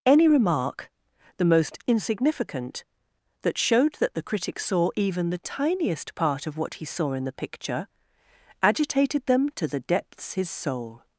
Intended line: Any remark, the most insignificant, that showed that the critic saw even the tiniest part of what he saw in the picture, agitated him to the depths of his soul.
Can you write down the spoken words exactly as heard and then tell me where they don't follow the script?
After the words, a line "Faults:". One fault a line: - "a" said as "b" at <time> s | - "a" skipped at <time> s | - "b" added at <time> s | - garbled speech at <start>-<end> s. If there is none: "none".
Any remark, the most insignificant, that showed that the critic saw even the tiniest part of what he saw in the picture, agitated them to the depths his soul.
Faults:
- "him" said as "them" at 9.3 s
- "of" skipped at 10.3 s